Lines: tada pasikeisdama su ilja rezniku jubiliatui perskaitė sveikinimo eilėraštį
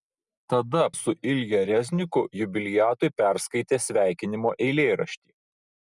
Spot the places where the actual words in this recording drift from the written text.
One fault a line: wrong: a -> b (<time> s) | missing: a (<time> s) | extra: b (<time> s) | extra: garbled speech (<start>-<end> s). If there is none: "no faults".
missing: pasikeisdama (0.8 s)